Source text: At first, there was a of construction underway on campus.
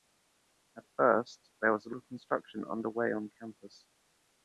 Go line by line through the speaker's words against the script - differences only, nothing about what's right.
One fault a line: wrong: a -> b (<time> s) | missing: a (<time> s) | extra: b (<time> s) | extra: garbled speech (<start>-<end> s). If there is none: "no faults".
no faults